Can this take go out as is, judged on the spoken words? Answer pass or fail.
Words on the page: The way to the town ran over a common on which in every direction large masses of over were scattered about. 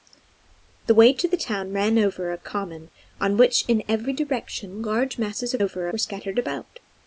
pass